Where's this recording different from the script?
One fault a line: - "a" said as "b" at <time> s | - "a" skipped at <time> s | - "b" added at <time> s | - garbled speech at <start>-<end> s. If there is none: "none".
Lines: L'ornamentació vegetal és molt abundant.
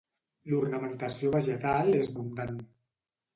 - "molt" skipped at 2.1 s